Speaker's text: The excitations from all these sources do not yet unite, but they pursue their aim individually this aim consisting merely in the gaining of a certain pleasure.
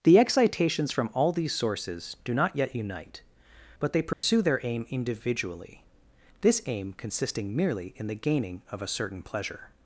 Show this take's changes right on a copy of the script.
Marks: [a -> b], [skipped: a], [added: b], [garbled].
The excitations from all these sources do not yet unite, but they pursue their aim individually this aim consisting merely in the gaining of a certain pleasure.